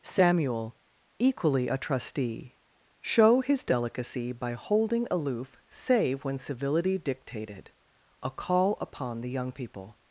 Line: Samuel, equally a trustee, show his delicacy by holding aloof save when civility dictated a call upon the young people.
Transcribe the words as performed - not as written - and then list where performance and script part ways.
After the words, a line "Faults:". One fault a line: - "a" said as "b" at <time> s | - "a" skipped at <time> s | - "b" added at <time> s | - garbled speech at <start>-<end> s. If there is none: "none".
Samuel, equally a trustee, show his delicacy by holding aloof save when civility dictated a call upon the young people.
Faults:
none